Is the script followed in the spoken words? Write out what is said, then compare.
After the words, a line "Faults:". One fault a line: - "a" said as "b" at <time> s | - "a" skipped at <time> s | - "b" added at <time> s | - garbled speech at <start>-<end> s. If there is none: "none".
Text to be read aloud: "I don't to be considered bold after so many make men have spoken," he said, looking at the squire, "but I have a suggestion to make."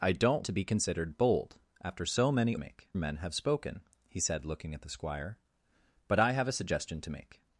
"I don't to be considered bold after so many make men have spoken," he said, looking at the squire, "but I have a suggestion to make."
Faults:
none